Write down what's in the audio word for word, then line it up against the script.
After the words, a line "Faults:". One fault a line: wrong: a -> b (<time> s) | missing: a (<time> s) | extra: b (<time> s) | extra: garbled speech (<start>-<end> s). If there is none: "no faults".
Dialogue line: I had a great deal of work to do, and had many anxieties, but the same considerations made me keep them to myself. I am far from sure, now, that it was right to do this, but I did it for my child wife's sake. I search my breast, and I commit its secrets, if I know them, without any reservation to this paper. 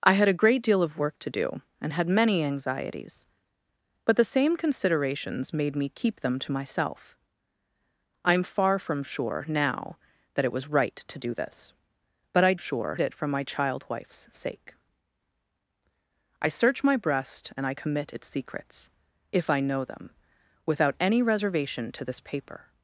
I had a great deal of work to do, and had many anxieties, but the same considerations made me keep them to myself. I am far from sure, now, that it was right to do this, but I sure it for my child wife's sake. I search my breast, and I commit its secrets, if I know them, without any reservation to this paper.
Faults:
wrong: did -> sure (12.6 s)